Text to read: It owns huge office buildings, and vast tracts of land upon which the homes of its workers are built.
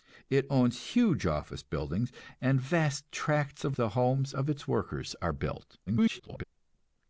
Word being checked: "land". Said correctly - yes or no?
no